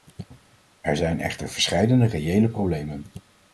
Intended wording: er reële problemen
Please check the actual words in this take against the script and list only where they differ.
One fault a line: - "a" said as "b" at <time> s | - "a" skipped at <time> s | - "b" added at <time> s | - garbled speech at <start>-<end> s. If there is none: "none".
- "zijn echter verscheidene" added at 0.9 s